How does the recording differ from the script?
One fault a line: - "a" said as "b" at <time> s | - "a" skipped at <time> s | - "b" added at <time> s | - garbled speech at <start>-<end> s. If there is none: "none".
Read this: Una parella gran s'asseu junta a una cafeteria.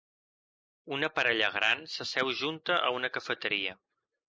none